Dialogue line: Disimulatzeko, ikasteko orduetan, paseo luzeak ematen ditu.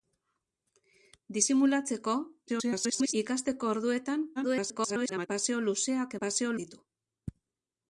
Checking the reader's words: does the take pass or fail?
fail